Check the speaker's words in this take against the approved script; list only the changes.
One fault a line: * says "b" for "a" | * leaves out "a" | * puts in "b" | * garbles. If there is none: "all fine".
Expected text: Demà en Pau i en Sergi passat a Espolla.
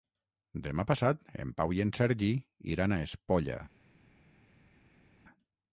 * puts in "passat"
* says "iran" for "passat"